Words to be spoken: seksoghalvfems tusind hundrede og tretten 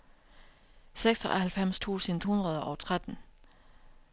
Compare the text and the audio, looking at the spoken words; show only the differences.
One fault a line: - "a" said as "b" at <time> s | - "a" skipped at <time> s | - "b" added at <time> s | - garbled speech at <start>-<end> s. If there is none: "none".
none